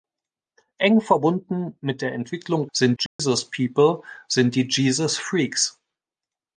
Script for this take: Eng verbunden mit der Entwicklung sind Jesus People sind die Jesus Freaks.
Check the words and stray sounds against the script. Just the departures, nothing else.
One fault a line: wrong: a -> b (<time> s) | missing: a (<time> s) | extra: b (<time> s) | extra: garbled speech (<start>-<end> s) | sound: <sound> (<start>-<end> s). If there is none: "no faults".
sound: dropout (3.1-3.2 s)